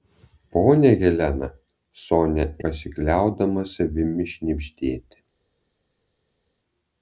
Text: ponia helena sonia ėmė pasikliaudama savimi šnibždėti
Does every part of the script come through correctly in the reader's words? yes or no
no